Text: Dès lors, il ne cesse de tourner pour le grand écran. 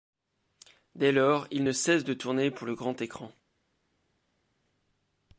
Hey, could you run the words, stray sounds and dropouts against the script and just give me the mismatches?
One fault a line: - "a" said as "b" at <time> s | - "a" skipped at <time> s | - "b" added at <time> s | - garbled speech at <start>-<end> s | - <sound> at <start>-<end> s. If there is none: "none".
none